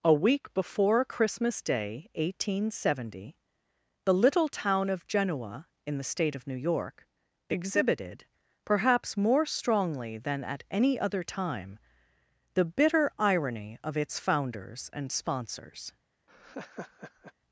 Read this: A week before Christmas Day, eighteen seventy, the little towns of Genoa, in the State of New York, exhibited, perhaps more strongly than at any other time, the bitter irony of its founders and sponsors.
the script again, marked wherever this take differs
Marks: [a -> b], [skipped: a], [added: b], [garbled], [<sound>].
A week before Christmas Day, eighteen seventy, the little [towns -> town] of Genoa, in the State of New York, exhibited, perhaps more strongly than at any other time, the bitter irony of its founders and sponsors. [laugh]